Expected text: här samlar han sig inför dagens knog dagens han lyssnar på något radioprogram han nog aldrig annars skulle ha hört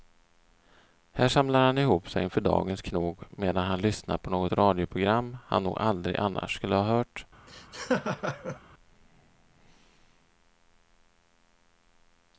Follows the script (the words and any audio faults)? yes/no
no